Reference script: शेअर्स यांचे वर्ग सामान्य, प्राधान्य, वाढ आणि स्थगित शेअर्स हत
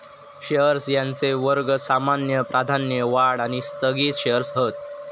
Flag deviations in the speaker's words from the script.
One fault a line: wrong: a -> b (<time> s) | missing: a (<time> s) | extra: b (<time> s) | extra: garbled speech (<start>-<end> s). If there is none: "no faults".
no faults